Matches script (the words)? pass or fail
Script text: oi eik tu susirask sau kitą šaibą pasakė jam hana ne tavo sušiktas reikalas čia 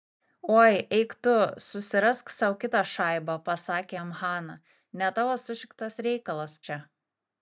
pass